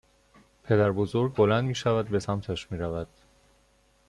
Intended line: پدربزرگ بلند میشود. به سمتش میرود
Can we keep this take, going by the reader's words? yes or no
yes